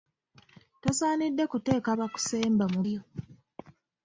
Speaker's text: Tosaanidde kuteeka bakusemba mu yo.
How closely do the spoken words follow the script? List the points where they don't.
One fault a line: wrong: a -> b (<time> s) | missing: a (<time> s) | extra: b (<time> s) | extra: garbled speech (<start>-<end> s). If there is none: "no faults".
no faults